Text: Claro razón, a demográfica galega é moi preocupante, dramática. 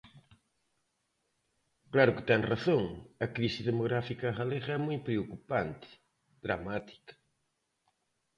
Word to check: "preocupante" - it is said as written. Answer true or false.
true